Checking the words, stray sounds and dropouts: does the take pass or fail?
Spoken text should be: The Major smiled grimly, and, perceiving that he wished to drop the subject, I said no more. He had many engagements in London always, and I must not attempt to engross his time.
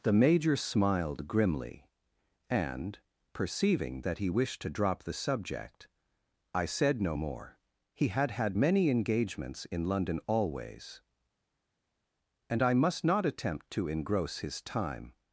fail